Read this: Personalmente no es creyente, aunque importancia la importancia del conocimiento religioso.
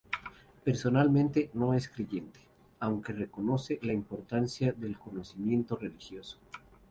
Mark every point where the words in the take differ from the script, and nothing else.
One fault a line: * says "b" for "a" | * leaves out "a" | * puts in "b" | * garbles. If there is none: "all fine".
* says "reconoce" for "importancia"